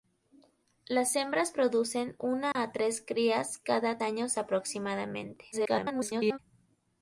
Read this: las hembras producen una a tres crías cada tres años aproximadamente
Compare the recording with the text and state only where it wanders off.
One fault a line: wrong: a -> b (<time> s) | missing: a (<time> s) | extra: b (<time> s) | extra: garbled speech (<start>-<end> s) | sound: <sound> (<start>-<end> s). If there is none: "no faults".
sound: dropout (2.5-2.6 s)
missing: tres (4.0 s)
extra: garbled speech (5.5-6.4 s)